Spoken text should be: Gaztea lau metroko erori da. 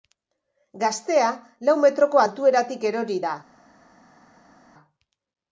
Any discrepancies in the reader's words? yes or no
yes